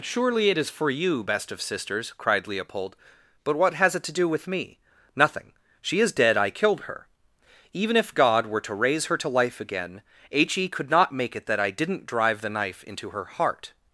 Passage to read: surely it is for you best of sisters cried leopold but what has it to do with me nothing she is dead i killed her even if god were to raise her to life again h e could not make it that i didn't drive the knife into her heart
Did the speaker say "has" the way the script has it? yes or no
yes